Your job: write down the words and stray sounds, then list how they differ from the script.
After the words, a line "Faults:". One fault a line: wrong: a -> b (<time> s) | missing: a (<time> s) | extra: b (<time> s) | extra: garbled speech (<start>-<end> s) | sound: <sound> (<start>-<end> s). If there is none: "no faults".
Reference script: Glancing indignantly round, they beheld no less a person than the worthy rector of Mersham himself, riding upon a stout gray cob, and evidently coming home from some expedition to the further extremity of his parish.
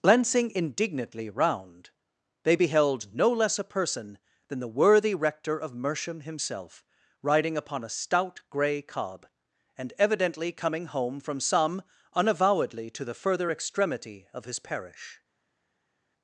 Glancing indignantly round, they beheld no less a person than the worthy rector of Mersham himself, riding upon a stout gray cob, and evidently coming home from some unavowedly to the further extremity of his parish.
Faults:
wrong: expedition -> unavowedly (12.1 s)